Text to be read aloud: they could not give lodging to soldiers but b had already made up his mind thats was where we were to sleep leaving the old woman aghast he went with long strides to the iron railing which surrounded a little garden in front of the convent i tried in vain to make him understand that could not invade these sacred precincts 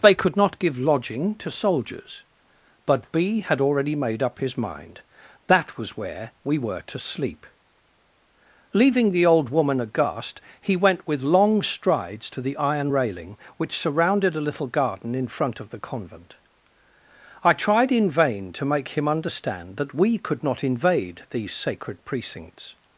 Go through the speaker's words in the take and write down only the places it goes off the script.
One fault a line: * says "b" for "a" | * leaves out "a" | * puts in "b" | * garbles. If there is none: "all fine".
* says "that" for "thats"
* puts in "we"